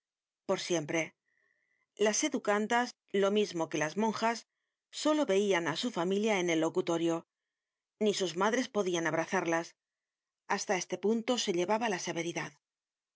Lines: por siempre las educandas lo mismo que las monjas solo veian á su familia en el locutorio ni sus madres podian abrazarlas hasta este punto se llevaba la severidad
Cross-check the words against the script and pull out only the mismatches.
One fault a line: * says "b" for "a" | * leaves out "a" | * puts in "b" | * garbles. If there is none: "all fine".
all fine